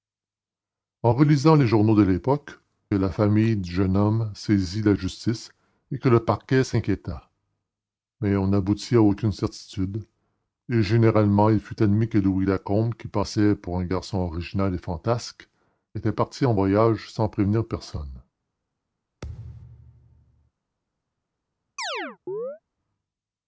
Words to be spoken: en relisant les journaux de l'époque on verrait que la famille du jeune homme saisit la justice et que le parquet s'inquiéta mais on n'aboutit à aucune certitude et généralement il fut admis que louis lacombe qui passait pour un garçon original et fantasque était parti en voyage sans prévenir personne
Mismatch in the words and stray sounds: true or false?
true